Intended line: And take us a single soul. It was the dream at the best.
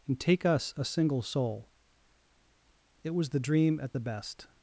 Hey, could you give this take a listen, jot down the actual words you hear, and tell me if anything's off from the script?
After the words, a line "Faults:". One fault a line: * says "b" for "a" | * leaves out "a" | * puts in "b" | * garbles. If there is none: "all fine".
And take us a single soul. It was the dream at the best.
Faults:
all fine